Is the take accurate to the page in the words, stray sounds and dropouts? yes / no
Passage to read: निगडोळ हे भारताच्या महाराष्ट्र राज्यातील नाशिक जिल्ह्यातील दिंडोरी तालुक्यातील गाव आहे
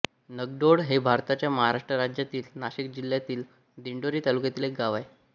no